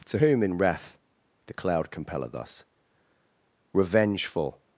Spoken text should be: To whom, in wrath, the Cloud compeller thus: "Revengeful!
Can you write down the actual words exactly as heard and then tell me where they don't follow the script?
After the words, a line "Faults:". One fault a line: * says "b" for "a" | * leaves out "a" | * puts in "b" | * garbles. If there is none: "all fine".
To whom, in wrath, the Cloud compeller thus: "Revengeful!
Faults:
all fine